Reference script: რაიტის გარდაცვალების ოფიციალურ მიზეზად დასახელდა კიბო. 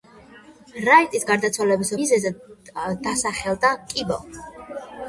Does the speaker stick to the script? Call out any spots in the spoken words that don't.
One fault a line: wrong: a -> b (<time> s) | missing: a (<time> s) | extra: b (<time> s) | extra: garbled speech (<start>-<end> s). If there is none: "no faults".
missing: ოფიციალურ (1.9 s)